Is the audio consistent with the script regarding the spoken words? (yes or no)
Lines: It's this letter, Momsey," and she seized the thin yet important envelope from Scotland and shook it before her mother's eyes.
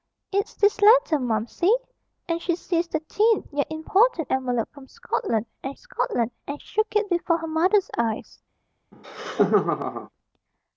no